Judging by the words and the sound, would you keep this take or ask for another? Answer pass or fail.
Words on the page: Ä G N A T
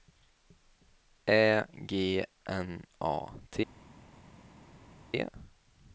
pass